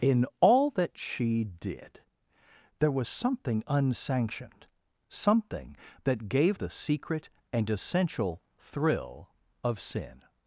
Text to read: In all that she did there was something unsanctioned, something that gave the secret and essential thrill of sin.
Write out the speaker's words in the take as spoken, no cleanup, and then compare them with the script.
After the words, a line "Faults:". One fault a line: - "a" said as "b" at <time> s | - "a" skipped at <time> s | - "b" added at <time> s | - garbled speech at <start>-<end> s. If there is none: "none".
In all that she did there was something unsanctioned, something that gave the secret and essential thrill of sin.
Faults:
none